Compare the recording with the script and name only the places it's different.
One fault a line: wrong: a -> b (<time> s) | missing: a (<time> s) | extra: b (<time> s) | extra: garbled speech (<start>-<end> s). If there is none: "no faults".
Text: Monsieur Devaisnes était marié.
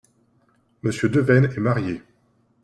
wrong: était -> est (1.5 s)